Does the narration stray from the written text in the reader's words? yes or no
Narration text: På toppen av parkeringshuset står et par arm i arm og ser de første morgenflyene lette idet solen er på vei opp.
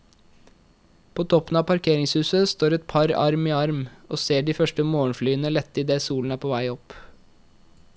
no